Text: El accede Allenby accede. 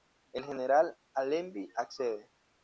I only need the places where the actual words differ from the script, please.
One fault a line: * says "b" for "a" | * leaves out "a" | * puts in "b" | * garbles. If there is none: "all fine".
* says "general" for "accede"